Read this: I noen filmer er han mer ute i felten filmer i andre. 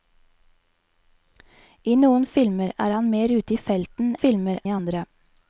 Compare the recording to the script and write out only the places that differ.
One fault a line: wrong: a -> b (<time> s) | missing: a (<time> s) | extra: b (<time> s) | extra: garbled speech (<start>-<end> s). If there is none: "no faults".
no faults